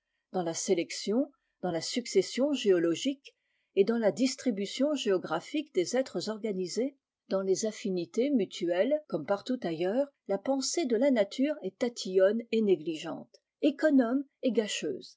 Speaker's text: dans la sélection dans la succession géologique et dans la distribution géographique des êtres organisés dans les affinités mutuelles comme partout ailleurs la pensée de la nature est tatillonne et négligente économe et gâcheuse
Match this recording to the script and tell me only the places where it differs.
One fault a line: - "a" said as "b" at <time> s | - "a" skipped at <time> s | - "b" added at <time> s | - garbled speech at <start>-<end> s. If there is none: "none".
none